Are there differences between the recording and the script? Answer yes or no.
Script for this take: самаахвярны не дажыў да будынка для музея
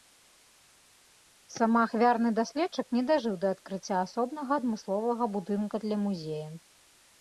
yes